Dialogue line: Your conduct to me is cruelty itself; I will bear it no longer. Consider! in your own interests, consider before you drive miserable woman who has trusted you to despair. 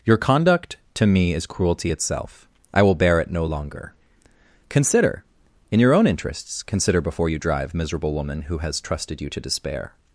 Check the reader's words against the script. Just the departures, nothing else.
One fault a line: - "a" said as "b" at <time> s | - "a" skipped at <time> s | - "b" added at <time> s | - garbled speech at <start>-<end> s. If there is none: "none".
none